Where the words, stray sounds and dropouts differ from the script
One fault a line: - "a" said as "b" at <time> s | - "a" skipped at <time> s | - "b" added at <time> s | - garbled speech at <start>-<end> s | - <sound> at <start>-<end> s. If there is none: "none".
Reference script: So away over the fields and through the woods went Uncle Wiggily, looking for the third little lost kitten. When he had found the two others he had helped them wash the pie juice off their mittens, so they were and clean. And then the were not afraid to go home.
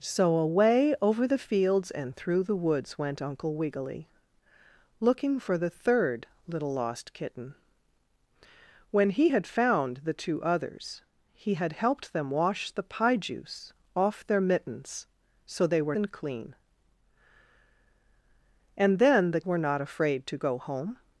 none